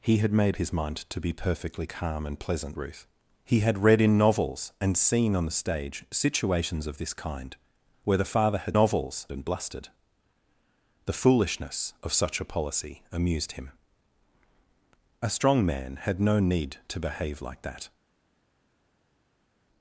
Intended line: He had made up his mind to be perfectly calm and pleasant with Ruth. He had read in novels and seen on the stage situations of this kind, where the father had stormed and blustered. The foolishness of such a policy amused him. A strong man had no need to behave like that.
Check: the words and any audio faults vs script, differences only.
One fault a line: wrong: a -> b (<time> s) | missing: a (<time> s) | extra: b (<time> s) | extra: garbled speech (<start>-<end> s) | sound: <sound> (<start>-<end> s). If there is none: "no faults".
missing: up (0.6 s)
missing: with (2.8 s)
wrong: stormed -> novels (8.7 s)